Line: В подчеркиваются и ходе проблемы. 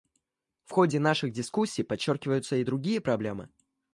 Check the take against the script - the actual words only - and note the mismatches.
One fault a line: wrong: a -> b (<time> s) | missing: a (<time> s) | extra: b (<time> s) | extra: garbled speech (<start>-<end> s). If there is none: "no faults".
extra: ходе наших дискуссий (0.7 s)
wrong: ходе -> другие (2.6 s)